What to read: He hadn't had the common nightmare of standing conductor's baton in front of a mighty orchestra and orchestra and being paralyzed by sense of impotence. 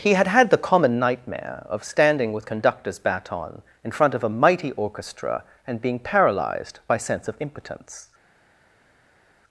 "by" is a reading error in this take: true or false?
false